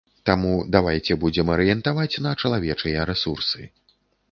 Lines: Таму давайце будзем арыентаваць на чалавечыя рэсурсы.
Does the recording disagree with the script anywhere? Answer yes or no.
no